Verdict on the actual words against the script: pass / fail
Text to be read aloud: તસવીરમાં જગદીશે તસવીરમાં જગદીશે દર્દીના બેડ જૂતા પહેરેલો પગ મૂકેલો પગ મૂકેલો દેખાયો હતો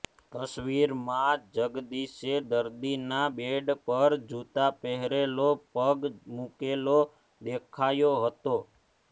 fail